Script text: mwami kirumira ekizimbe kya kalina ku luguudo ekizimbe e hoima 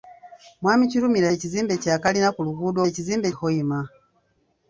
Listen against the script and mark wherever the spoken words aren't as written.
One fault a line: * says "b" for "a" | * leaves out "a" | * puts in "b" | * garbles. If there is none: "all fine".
all fine